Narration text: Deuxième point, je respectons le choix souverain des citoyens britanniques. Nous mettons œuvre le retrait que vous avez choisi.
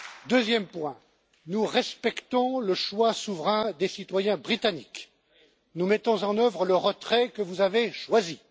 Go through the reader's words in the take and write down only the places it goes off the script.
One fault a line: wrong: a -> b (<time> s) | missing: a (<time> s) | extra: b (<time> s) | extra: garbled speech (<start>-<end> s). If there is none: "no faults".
wrong: je -> nous (1.5 s)
extra: en (6.2 s)